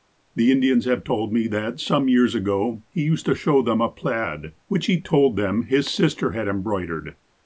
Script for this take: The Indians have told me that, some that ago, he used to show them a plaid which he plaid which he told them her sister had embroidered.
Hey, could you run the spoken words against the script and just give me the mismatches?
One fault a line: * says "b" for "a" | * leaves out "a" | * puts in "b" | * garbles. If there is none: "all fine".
* says "years" for "that"
* leaves out "plaid which he"
* says "his" for "her"